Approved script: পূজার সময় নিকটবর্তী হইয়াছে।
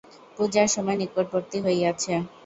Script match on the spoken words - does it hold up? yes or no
yes